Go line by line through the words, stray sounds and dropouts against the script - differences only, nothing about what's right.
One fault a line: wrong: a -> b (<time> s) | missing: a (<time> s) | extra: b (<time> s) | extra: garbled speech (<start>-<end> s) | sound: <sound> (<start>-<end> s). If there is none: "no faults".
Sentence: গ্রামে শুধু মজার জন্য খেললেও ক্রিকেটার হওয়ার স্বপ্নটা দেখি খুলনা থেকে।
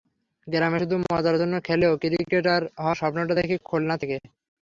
no faults